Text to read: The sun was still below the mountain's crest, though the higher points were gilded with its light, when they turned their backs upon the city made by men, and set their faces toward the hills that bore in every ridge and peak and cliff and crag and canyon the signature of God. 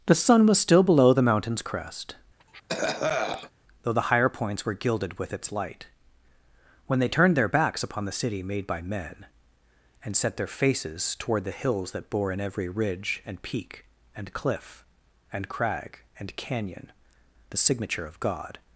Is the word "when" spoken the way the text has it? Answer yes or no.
yes